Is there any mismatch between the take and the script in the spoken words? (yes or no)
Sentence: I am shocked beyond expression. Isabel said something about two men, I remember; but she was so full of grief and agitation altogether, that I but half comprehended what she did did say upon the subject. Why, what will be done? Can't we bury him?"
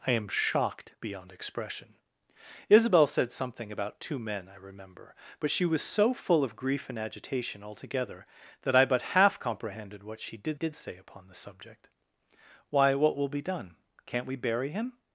no